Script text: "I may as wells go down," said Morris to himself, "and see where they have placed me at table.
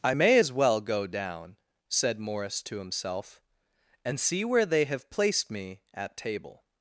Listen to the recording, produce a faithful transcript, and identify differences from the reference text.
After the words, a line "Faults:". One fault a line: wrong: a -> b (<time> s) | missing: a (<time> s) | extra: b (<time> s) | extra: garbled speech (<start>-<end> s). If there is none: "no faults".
"I may as well go down," said Morris to himself, "and see where they have placed me at table.
Faults:
wrong: wells -> well (0.5 s)